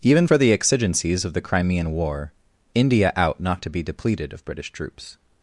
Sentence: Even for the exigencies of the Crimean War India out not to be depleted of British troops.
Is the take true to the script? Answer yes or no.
yes